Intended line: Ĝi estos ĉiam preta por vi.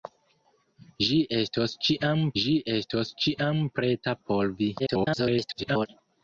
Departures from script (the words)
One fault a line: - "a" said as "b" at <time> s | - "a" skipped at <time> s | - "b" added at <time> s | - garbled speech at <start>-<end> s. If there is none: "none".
- "ĝi estos ĉiam" added at 2.4 s
- garbled speech at 4.8-5.9 s